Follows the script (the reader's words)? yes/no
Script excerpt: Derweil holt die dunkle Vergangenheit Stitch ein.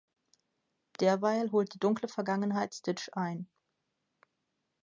yes